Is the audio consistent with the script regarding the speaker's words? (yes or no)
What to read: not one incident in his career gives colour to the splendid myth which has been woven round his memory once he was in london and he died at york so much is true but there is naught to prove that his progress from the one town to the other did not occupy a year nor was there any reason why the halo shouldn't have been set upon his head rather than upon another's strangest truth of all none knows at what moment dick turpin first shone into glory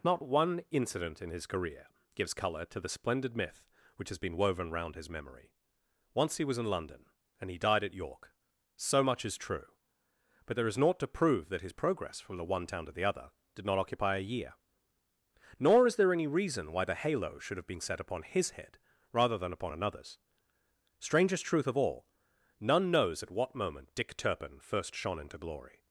no